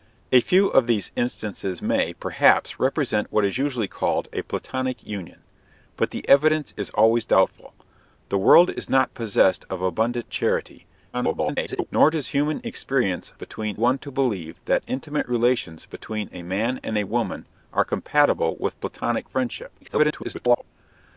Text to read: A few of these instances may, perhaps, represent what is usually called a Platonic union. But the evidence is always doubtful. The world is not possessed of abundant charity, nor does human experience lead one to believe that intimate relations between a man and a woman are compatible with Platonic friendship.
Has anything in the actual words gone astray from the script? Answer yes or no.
yes